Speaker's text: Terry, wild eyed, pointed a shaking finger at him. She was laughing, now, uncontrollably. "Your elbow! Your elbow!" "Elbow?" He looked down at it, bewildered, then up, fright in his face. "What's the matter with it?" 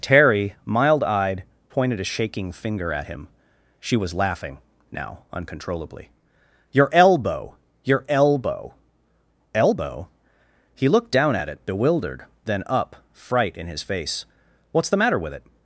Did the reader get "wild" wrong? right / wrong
wrong